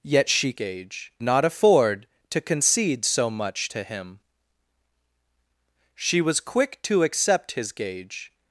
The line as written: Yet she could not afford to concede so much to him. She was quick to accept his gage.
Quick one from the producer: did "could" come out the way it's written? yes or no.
no